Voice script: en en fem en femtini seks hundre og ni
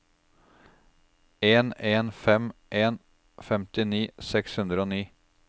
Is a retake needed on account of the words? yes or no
no